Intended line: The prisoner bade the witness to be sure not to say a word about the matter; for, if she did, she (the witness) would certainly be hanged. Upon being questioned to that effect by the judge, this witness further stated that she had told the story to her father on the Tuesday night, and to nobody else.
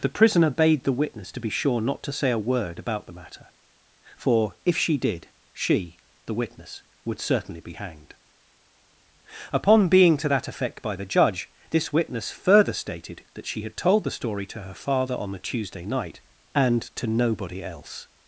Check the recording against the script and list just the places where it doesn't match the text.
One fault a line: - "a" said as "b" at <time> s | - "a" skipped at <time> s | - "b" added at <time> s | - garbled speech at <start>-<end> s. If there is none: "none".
- "questioned" skipped at 10.2 s